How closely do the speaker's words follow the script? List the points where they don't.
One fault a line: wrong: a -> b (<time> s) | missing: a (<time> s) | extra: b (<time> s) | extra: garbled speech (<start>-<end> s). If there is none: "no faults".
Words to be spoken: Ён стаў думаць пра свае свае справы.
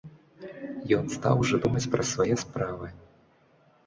extra: ужо (1.4 s)
missing: свае (2.3 s)